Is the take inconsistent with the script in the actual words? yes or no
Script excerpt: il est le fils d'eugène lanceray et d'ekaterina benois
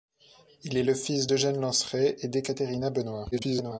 yes